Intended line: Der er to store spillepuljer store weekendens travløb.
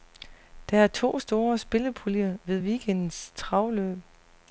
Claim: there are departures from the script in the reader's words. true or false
true